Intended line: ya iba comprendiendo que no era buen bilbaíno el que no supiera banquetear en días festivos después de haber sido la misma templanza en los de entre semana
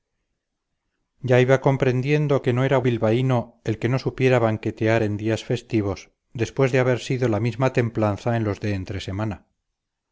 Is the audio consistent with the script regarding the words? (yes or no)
no